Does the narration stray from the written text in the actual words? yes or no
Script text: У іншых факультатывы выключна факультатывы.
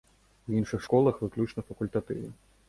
yes